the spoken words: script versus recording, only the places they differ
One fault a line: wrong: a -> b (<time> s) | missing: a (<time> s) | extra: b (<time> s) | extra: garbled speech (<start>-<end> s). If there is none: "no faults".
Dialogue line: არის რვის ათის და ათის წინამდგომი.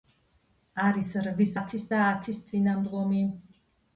no faults